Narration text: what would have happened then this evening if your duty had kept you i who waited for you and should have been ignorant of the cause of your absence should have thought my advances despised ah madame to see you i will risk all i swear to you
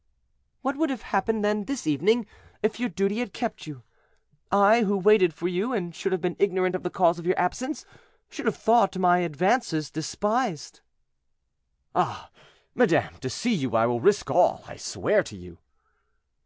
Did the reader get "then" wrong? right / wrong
right